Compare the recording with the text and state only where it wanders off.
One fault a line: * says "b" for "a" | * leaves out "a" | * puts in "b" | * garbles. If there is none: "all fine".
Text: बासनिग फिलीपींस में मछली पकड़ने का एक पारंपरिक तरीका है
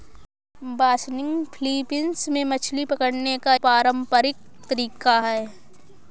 * leaves out "एक"